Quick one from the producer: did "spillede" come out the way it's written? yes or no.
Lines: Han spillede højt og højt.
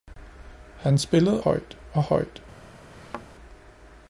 yes